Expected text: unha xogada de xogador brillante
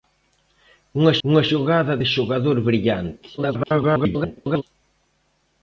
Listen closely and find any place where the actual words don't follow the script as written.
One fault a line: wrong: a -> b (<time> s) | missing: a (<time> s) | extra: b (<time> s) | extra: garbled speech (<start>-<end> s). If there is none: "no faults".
extra: unha (1.3 s)
extra: garbled speech (3.4-4.6 s)